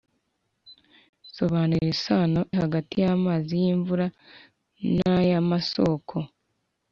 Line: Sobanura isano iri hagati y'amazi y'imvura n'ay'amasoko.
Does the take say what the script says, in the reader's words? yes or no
no